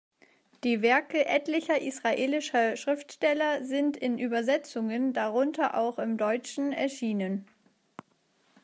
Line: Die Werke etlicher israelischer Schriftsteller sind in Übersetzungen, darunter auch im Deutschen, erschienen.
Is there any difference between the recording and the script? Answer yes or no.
no